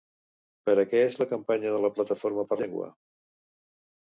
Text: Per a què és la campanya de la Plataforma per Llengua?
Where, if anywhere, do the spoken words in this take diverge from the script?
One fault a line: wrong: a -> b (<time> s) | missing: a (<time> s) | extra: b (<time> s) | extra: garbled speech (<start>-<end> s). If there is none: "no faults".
no faults